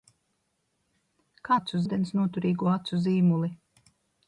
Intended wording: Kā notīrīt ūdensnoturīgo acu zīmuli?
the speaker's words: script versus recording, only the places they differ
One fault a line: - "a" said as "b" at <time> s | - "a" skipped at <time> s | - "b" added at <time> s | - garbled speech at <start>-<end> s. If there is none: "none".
- "notīrīt" said as "acu" at 1.6 s